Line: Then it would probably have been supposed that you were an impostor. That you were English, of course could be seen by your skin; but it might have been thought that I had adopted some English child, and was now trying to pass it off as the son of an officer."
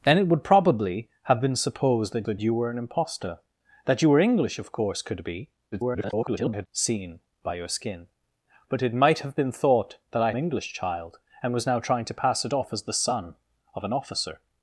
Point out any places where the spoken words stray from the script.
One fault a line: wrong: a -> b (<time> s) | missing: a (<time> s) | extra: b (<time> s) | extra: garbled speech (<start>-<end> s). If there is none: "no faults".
extra: that (2.3 s)
extra: garbled speech (5.7-6.7 s)
missing: had adopted some (10.3 s)